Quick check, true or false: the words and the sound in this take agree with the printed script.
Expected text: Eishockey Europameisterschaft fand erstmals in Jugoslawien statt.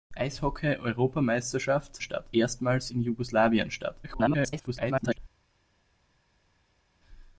false